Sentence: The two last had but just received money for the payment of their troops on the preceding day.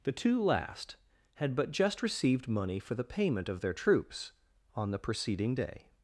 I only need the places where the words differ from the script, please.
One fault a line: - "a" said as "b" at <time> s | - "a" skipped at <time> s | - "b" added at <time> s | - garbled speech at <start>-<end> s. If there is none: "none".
none